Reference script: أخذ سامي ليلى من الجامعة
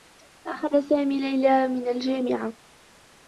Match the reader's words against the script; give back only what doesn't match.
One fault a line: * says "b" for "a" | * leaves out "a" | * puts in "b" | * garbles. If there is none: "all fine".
all fine